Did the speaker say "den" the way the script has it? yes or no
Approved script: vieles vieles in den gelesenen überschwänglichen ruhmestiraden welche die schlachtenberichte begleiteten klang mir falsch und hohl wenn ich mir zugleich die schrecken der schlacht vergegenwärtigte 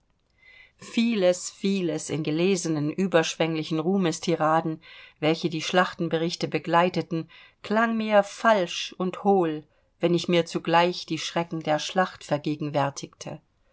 no